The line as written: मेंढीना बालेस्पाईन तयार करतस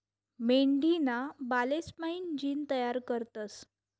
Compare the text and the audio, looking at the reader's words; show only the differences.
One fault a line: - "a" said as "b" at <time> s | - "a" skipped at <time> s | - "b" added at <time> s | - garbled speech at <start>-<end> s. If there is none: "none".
- "जीन" added at 2.4 s